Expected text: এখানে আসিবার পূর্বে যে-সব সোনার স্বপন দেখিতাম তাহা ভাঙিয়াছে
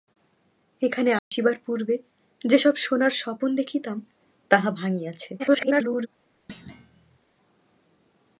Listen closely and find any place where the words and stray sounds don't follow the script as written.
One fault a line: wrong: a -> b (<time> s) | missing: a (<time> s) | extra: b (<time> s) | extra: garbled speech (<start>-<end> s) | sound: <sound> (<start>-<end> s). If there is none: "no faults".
sound: dropout (1.2-1.3 s)
extra: garbled speech (5.4-6.1 s)
sound: thud (6.5-7.2 s)